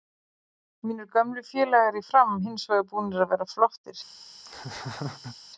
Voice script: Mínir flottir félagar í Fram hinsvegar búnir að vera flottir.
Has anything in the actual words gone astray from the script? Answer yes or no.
yes